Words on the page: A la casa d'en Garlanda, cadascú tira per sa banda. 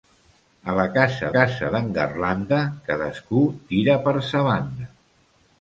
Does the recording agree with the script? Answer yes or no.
no